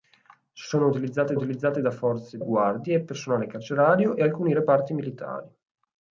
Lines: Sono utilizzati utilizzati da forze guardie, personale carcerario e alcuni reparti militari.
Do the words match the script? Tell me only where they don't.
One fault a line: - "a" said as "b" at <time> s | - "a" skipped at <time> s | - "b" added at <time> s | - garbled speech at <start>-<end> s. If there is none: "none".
none